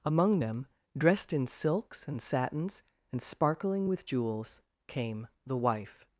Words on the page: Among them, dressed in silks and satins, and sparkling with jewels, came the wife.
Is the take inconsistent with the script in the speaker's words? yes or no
no